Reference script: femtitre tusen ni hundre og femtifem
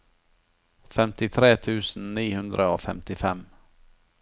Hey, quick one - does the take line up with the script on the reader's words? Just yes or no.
yes